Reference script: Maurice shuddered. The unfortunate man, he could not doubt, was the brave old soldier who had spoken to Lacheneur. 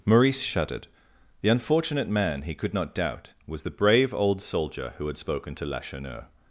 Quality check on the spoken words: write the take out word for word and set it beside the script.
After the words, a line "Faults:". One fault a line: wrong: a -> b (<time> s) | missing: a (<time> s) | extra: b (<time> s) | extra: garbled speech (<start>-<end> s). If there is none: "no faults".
Maurice shuddered. The unfortunate man, he could not doubt, was the brave old soldier who had spoken to Lacheneur.
Faults:
no faults